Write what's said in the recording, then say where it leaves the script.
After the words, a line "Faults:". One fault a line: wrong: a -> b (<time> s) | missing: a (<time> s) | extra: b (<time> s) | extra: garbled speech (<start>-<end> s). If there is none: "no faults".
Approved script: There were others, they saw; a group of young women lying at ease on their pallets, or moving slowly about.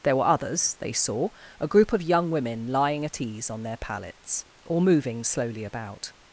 There were others, they saw; a group of young women lying at ease on their pallets, or moving slowly about.
Faults:
no faults